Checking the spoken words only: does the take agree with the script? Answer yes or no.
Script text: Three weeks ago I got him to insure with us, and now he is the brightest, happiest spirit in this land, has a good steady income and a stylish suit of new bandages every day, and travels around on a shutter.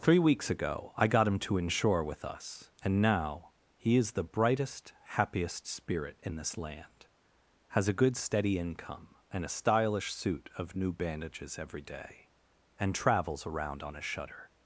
yes